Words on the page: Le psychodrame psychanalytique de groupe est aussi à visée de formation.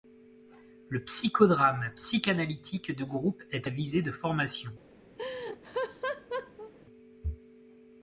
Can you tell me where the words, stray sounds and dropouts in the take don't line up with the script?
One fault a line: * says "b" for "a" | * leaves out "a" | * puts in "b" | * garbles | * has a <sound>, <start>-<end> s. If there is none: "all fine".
* leaves out "aussi"
* has a laugh, 5.2-6.7 s